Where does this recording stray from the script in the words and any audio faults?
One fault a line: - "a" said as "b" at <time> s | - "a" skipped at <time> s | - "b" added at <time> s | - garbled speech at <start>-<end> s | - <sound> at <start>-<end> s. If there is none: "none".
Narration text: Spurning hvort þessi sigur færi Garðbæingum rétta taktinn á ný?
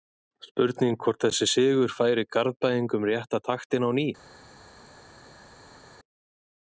none